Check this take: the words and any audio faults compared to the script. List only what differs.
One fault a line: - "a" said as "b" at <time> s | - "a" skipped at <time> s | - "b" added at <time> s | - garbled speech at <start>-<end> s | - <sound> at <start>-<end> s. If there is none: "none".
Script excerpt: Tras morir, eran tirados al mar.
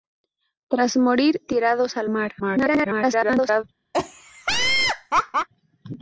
- "eran" skipped at 1.4 s
- garbled speech at 2.4-3.6 s
- laugh at 3.9-5.5 s